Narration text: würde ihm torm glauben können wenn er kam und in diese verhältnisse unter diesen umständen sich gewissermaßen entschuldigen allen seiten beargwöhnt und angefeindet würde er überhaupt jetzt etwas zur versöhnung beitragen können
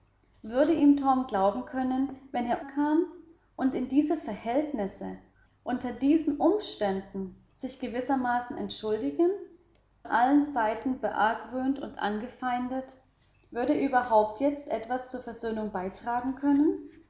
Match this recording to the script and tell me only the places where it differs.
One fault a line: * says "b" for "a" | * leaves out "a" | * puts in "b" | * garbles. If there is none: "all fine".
all fine